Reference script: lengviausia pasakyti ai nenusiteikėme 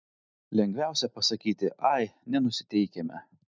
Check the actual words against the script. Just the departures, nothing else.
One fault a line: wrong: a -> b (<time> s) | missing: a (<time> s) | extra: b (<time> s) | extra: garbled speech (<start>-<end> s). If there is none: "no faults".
no faults